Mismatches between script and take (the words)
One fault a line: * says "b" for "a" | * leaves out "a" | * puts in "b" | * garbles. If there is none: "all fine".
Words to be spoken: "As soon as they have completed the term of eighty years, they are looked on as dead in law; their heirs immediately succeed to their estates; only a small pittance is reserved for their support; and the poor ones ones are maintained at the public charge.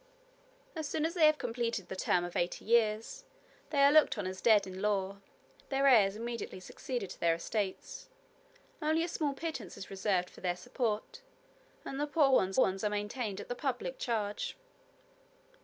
all fine